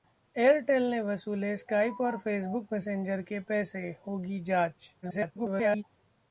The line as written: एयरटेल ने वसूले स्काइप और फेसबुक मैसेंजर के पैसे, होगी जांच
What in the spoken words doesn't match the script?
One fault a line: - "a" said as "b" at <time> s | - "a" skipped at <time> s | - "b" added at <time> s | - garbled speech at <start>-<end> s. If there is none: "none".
- garbled speech at 5.0-5.8 s